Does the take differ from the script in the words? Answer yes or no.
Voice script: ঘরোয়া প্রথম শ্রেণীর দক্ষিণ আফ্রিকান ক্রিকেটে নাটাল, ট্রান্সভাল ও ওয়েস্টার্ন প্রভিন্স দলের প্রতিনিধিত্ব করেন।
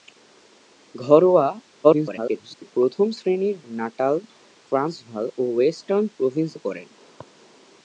yes